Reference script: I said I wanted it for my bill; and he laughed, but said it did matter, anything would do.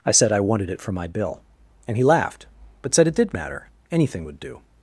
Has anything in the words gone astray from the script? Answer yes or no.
no